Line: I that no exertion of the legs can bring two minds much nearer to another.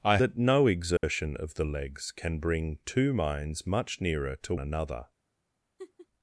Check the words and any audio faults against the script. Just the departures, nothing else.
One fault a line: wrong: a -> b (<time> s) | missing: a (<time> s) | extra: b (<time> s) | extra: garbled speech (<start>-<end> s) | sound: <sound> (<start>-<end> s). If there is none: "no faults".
sound: dropout (1.0-1.0 s)
sound: laugh (5.8-6.1 s)